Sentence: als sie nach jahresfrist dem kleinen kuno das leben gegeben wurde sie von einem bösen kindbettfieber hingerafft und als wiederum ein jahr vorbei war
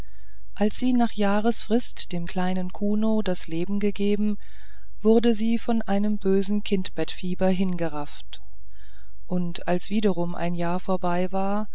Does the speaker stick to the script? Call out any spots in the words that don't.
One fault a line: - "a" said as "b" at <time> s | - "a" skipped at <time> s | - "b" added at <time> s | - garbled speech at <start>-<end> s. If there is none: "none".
none